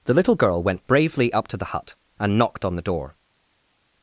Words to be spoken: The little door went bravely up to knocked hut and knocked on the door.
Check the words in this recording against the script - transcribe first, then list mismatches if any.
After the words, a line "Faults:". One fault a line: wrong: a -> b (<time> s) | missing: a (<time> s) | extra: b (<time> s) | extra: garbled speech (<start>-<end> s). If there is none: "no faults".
The little girl went bravely up to the hut and knocked on the door.
Faults:
wrong: door -> girl (0.3 s)
wrong: knocked -> the (1.6 s)